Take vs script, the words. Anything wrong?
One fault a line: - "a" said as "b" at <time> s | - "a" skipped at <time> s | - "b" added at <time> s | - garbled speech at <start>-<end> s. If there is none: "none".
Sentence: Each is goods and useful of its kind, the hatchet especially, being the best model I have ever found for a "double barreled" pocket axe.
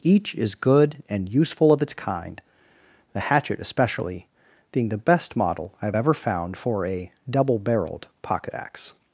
- "goods" said as "good" at 0.6 s